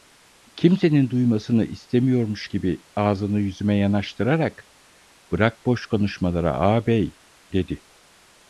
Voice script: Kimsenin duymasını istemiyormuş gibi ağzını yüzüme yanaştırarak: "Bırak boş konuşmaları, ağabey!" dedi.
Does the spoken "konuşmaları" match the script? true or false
true